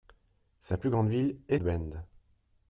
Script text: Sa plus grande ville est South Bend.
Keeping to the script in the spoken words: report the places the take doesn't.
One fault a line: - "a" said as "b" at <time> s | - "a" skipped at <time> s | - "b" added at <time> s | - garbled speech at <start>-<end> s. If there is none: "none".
- "South" skipped at 1.6 s